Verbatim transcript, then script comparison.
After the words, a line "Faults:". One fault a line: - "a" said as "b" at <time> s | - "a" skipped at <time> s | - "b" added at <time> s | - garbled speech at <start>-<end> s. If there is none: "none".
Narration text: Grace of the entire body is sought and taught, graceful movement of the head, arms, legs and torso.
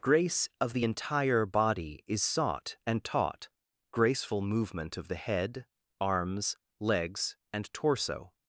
Grace of the entire body is sought and taught, graceful movement of the head, arms, legs and torso.
Faults:
none